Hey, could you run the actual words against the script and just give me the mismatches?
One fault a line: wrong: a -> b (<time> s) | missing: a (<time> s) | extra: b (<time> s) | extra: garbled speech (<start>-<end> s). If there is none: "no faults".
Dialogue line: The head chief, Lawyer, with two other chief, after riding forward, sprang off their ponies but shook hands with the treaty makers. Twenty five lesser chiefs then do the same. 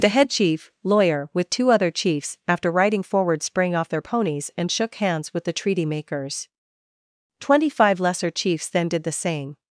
wrong: chief -> chiefs (1.9 s)
wrong: but -> and (4.6 s)
wrong: do -> did (8.9 s)